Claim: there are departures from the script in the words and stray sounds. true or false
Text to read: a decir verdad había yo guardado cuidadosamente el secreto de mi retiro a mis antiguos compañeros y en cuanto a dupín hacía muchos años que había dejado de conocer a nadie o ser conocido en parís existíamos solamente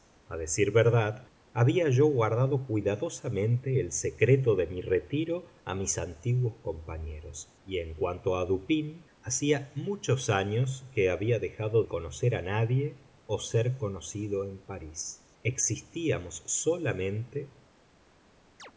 true